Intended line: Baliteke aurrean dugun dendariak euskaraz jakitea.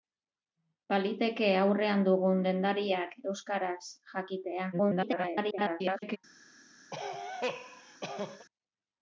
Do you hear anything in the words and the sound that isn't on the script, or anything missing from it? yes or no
yes